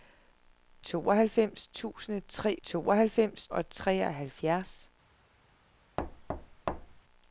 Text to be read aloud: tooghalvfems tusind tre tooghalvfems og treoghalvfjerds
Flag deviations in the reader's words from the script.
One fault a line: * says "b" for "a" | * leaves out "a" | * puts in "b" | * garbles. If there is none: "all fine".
all fine